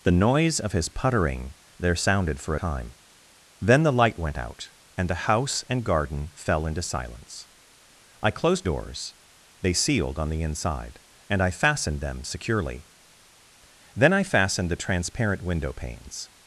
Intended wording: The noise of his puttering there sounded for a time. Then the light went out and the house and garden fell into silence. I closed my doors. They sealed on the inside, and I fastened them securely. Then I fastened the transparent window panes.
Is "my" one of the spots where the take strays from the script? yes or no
yes